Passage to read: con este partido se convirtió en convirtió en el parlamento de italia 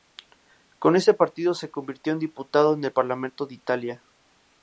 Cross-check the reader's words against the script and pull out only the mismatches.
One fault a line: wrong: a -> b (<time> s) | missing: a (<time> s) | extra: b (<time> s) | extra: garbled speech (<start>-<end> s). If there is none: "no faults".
wrong: este -> ese (0.9 s)
wrong: convirtió -> diputado (2.2 s)